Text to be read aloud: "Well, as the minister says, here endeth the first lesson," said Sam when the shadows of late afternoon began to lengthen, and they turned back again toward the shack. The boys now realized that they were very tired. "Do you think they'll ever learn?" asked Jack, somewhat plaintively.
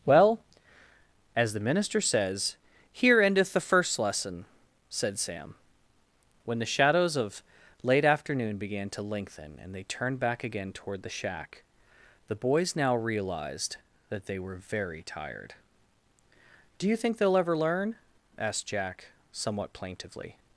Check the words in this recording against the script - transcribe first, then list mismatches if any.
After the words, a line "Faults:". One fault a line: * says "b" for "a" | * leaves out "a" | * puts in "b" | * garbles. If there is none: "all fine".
"Well, as the minister says, here endeth the first lesson," said Sam when the shadows of late afternoon began to lengthen, and they turned back again toward the shack. The boys now realized that they were very tired. "Do you think they'll ever learn?" asked Jack, somewhat plaintively.
Faults:
all fine